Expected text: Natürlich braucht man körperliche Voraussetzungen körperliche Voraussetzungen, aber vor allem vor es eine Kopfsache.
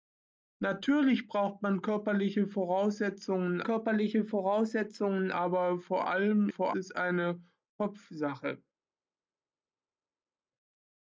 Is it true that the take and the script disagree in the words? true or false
false